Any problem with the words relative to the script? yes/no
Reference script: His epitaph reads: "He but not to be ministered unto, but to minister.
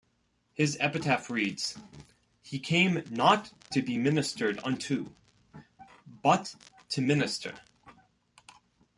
yes